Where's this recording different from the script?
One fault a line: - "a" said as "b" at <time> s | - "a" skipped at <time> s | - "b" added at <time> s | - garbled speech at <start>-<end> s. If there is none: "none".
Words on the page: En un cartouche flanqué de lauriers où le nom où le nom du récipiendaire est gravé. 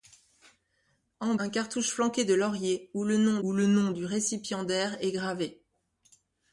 none